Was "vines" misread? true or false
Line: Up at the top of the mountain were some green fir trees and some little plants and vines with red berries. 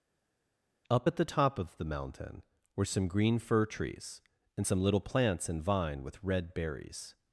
true